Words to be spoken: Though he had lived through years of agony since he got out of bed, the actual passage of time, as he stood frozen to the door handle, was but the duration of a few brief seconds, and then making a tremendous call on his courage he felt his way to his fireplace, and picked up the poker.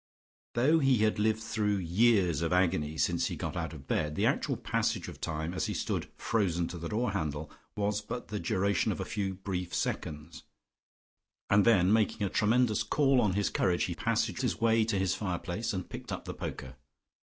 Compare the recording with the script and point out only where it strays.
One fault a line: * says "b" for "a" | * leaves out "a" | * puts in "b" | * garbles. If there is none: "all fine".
* says "passage" for "felt"